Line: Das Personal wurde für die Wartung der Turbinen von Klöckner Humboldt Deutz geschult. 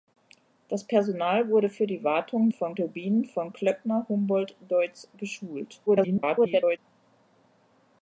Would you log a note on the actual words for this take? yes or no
yes